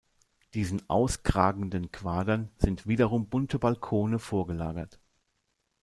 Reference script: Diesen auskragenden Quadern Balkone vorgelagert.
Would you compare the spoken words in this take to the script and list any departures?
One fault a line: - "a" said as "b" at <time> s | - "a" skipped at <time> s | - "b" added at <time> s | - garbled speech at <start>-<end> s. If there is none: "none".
- "sind wiederum bunte" added at 2.6 s